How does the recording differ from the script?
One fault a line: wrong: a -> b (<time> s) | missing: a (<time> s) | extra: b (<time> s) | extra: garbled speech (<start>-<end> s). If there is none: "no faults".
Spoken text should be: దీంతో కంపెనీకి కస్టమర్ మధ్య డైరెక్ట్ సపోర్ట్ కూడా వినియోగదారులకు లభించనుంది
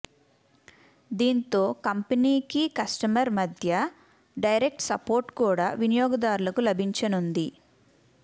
no faults